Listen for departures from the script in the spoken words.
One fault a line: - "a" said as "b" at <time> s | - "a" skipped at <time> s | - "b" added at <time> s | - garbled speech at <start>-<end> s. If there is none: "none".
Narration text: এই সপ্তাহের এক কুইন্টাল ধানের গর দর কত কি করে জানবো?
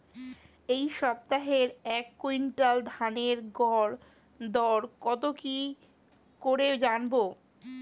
none